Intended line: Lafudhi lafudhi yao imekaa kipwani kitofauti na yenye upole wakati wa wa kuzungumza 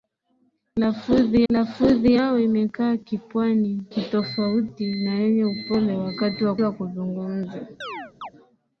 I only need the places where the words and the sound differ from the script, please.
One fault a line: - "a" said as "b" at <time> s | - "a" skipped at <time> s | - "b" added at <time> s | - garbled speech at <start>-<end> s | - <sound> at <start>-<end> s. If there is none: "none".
- chirp at 7.8-8.3 s